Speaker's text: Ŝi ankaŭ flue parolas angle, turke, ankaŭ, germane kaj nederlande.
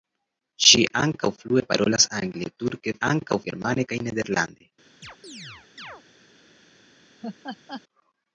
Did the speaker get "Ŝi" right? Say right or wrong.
right